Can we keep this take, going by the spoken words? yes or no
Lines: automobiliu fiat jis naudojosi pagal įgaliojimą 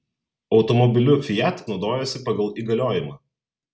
no